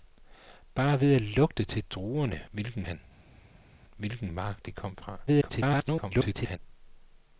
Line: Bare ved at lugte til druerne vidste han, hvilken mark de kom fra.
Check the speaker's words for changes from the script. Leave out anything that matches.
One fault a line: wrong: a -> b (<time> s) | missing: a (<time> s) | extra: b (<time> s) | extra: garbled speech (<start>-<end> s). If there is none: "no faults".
wrong: vidste -> hvilken (2.5 s)
extra: garbled speech (5.3-6.6 s)